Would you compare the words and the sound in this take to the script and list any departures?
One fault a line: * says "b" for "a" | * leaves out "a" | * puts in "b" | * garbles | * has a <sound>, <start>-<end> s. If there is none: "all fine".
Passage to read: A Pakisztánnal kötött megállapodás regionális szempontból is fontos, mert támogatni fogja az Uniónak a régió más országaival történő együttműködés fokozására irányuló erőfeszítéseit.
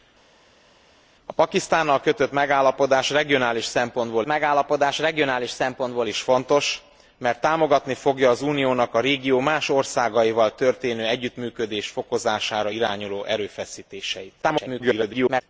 * puts in "megállapodás regionális szempontból"
* garbles